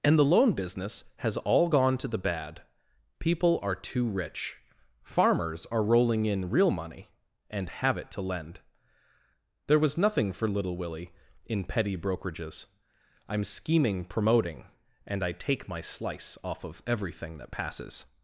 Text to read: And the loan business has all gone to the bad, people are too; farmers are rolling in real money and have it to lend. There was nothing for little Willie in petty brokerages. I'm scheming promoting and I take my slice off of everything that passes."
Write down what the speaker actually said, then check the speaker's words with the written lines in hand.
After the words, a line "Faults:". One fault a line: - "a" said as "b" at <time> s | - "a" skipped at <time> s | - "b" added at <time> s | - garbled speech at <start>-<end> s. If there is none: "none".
And the loan business has all gone to the bad, people are too rich; farmers are rolling in real money and have it to lend. There was nothing for little Willie in petty brokerages. I'm scheming promoting and I take my slice off of everything that passes."
Faults:
- "rich" added at 4.1 s